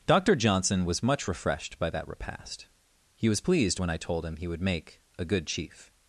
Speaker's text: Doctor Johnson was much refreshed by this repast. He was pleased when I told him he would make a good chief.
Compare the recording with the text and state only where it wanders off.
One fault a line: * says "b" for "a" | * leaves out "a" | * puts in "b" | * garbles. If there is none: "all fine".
* says "that" for "this"